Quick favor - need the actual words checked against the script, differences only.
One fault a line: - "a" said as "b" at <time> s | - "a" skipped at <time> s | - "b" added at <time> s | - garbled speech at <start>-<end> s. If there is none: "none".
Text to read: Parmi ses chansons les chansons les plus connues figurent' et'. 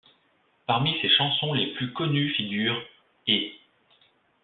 - "chansons les" skipped at 1.8 s